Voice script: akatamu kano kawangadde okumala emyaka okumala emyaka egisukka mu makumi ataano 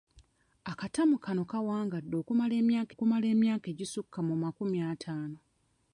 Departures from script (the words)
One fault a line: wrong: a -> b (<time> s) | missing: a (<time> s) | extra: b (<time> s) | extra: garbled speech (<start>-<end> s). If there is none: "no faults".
no faults